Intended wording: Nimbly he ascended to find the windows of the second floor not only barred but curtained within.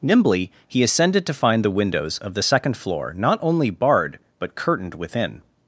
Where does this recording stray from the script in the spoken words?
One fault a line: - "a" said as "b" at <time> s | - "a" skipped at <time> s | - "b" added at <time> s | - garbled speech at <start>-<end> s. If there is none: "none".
none